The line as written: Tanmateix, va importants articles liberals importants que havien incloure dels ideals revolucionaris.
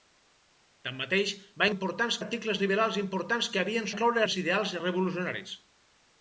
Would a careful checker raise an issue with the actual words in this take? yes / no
no